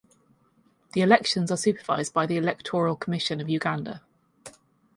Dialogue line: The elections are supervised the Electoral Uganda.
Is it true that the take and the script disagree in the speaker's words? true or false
true